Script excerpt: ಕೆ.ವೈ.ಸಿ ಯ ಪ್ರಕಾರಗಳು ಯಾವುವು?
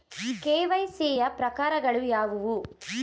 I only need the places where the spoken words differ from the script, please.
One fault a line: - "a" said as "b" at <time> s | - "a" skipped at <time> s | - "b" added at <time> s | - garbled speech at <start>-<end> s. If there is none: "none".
none